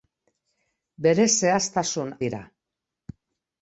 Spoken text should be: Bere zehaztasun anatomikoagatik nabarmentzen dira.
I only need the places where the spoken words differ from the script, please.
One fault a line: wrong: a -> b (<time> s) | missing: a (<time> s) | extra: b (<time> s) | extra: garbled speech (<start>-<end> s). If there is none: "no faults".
missing: anatomikoagatik nabarmentzen (2.1 s)